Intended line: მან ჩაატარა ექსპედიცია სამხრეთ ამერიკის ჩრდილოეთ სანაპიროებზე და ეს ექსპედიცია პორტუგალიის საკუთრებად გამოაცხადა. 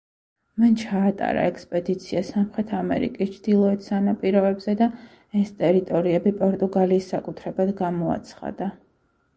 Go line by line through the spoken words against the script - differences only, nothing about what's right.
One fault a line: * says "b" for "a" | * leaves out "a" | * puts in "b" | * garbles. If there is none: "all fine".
* says "ტერიტორიები" for "ექსპედიცია"